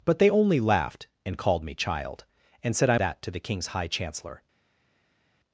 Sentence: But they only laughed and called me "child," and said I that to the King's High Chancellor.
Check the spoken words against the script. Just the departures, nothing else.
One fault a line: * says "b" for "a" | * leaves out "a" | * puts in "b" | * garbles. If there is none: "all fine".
all fine